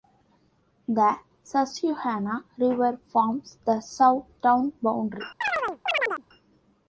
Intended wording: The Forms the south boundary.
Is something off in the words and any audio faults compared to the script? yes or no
yes